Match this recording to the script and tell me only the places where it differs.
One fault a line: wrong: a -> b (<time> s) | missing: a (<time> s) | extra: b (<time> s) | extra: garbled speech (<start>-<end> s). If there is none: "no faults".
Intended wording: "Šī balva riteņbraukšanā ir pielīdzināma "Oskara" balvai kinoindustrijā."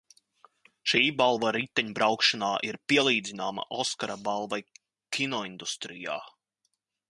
no faults